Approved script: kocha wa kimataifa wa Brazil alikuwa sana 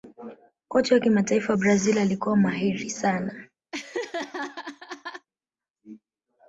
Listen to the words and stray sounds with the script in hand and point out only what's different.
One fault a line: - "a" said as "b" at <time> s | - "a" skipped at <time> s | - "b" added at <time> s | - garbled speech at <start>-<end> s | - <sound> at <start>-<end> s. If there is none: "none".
- "mahiri" added at 2.4 s
- laugh at 3.7-5.3 s